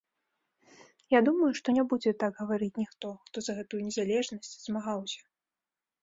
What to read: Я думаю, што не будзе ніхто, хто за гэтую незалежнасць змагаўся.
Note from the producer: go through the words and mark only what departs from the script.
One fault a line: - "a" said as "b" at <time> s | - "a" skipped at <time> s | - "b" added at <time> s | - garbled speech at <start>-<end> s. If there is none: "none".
- "так гаварыць" added at 2.2 s